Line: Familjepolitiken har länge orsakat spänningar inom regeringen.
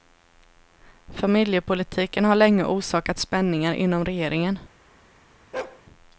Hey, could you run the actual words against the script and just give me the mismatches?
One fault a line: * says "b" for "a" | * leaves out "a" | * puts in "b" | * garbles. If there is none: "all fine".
all fine